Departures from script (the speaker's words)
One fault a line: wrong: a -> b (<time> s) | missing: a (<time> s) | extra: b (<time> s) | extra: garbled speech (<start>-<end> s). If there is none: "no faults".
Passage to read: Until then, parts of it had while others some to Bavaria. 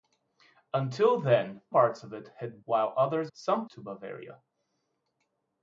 no faults